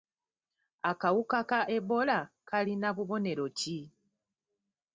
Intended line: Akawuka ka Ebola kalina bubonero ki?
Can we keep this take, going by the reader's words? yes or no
yes